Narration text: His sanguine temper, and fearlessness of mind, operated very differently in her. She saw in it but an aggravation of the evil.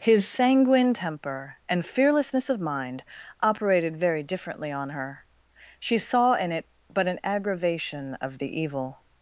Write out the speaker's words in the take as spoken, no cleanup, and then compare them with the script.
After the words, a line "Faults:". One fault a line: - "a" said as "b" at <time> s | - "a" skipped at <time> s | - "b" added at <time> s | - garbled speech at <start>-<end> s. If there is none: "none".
His sanguine temper, and fearlessness of mind, operated very differently on her. She saw in it but an aggravation of the evil.
Faults:
- "in" said as "on" at 4.7 s